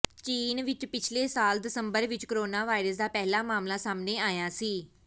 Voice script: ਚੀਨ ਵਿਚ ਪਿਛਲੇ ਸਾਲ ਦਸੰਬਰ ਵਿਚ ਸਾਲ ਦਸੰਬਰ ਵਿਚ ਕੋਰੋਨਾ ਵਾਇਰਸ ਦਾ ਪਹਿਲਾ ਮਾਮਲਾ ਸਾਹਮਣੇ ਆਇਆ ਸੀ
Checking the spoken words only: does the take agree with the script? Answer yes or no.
no